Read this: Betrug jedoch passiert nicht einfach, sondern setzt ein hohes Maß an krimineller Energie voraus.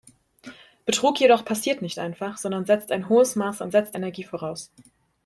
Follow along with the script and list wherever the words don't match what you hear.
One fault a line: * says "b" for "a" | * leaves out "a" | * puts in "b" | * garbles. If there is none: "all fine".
* says "setzt" for "krimineller"